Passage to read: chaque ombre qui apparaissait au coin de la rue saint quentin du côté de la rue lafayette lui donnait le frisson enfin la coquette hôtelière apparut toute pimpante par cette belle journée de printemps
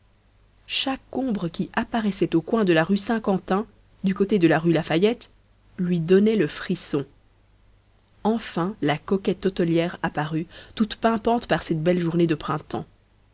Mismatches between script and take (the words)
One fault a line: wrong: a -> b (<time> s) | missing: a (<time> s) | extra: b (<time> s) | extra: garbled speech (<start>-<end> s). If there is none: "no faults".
no faults